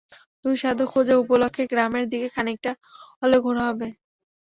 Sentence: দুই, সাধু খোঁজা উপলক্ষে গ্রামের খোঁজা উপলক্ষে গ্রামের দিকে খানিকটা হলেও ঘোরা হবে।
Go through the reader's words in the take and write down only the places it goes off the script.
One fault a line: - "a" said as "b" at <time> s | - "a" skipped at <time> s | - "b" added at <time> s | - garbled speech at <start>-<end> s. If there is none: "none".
- "খোঁজা উপলক্ষে গ্রামের" skipped at 2.0 s